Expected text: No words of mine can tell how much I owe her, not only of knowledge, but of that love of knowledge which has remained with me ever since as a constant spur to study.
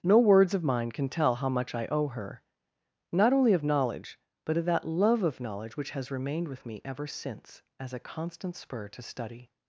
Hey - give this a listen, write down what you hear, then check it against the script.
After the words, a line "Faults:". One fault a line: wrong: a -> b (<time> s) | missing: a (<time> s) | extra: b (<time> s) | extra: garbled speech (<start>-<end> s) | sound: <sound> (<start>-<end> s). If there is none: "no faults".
No words of mine can tell how much I owe her, not only of knowledge, but of that love of knowledge which has remained with me ever since as a constant spur to study.
Faults:
no faults